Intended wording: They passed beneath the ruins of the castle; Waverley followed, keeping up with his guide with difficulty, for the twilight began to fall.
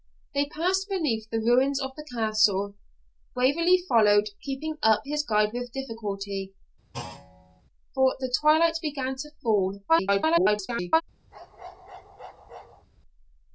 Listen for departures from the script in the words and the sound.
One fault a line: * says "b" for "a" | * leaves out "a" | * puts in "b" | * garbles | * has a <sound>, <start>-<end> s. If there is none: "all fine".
* leaves out "with"
* has a thud, 6.9-7.6 s
* garbles
* has a bark, 11.3-12.9 s